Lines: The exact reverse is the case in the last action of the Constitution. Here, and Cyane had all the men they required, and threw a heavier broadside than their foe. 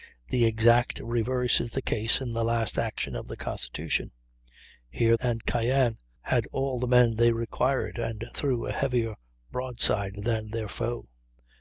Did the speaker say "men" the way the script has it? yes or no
yes